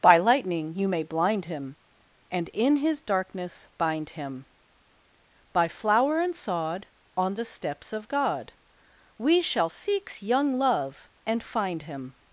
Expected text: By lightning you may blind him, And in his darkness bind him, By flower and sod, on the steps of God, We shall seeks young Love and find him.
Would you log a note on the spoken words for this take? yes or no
no